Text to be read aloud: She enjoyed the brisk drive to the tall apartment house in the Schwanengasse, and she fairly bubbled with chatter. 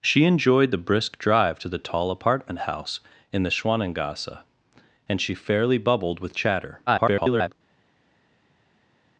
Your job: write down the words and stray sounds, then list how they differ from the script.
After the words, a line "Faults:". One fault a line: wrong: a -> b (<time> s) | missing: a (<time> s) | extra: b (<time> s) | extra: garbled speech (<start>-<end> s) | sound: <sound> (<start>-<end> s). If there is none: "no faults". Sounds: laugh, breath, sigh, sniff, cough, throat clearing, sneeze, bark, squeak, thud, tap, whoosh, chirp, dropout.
She enjoyed the brisk drive to the tall apartment house in the Schwanengasse, and she fairly bubbled with chatter. [garbled]
Faults:
extra: garbled speech (6.9-7.5 s)